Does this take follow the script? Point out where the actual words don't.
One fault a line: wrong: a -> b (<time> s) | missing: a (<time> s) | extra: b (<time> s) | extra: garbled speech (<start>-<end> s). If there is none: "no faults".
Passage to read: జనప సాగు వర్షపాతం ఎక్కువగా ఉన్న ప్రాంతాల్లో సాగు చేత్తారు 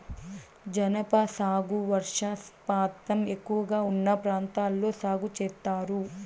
no faults